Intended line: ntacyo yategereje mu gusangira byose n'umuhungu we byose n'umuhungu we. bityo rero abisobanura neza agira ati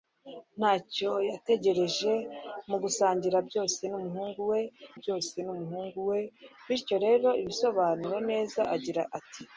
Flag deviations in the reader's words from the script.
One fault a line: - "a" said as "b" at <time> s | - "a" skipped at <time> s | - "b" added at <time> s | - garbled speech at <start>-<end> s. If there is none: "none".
none